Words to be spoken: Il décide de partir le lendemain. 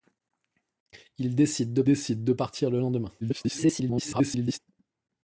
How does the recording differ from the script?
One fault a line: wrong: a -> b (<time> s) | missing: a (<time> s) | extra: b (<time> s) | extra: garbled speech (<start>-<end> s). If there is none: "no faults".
extra: décide de (1.8 s)
extra: garbled speech (3.2-4.6 s)